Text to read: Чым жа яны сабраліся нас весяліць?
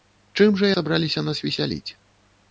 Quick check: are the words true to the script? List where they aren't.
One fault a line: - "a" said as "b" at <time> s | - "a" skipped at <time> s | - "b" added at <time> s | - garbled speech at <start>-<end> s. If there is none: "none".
- "яны" skipped at 0.7 s